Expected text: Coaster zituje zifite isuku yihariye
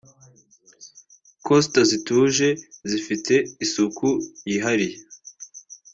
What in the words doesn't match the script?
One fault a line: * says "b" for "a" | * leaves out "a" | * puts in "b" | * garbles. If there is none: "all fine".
all fine